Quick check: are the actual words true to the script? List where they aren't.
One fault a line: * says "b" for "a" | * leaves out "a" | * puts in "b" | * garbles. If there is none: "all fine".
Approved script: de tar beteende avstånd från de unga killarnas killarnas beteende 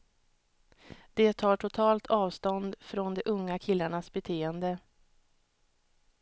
* says "totalt" for "beteende"
* leaves out "killarnas"